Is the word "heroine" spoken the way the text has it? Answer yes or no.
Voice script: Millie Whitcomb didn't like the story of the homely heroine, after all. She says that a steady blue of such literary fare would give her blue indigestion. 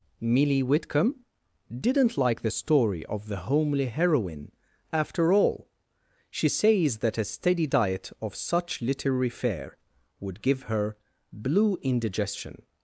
yes